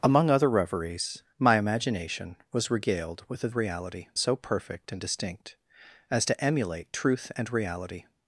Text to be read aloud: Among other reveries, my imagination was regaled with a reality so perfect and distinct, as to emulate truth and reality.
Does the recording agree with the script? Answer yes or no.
yes